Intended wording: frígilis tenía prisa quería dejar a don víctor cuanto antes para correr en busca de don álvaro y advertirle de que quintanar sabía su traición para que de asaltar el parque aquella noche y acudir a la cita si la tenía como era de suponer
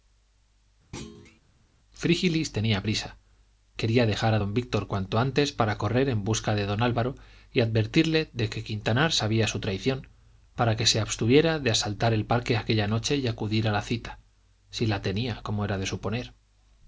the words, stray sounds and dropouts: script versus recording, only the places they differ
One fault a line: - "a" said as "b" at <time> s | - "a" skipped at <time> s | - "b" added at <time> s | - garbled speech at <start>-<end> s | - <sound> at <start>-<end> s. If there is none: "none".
- thud at 0.9-1.4 s
- "se abstuviera" added at 10.9 s